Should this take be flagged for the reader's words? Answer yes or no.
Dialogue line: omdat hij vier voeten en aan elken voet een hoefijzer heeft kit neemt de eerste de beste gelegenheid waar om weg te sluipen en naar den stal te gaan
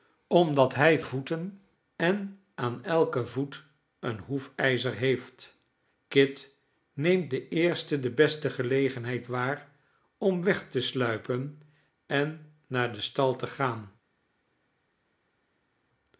yes